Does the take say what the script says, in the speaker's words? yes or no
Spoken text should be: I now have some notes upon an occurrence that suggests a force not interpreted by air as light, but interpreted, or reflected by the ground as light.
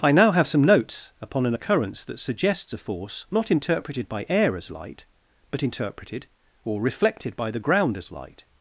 yes